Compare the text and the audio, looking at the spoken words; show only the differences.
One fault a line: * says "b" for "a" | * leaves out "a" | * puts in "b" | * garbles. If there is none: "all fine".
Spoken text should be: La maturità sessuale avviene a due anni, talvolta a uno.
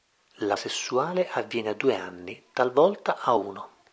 * leaves out "maturità"